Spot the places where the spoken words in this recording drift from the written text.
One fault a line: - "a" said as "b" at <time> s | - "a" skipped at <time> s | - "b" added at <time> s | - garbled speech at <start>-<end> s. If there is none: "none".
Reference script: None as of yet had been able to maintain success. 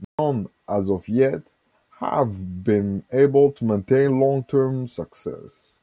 - "had" said as "have" at 2.0 s
- "long term" added at 4.2 s